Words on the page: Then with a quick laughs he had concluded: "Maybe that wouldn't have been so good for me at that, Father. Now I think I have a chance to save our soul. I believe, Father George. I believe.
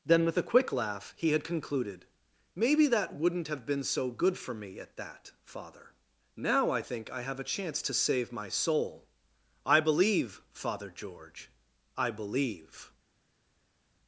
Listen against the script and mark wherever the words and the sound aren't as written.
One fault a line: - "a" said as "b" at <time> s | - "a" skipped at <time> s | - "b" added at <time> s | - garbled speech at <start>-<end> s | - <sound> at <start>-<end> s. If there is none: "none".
- "laughs" said as "laugh" at 0.7 s
- "our" said as "my" at 8.3 s